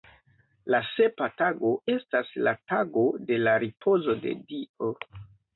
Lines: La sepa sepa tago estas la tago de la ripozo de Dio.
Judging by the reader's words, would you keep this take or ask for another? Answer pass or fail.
fail